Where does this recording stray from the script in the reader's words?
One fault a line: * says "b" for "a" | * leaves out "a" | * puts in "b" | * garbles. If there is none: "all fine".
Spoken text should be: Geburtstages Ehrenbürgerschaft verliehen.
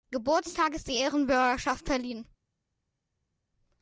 * puts in "die"